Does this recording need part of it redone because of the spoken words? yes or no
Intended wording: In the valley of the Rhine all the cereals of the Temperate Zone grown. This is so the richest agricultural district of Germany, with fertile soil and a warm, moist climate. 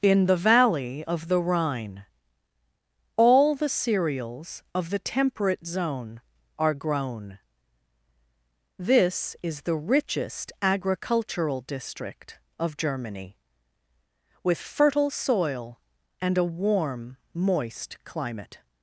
yes